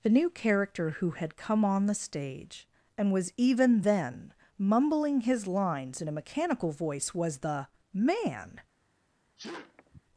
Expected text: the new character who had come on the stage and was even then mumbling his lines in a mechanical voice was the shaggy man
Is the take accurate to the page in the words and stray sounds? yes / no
no